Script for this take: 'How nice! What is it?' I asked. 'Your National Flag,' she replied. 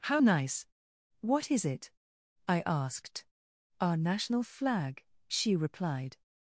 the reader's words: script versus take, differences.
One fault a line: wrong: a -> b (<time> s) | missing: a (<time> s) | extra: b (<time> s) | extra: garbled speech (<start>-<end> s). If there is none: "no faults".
wrong: Your -> Our (3.8 s)